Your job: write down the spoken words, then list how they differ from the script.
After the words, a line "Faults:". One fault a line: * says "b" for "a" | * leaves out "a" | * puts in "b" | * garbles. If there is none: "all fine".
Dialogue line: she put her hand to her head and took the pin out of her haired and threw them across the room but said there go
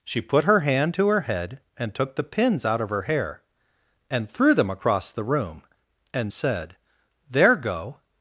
she put her hand to her head and took the pins out of her hair and threw them across the room and said there go
Faults:
* says "pins" for "pin"
* says "hair" for "haired"
* says "and" for "but"